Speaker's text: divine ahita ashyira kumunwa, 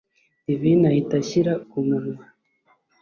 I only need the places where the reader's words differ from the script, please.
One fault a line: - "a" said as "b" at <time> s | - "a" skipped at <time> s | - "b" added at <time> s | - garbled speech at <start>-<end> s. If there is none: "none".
none